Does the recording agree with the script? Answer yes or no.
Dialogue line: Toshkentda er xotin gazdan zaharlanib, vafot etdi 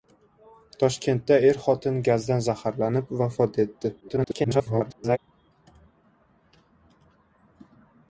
no